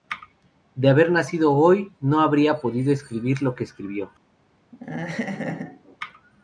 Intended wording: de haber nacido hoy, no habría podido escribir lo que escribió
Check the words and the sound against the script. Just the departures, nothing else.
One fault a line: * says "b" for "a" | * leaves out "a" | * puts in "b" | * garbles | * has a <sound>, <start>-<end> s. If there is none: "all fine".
* has a laugh, 4.7-6.0 s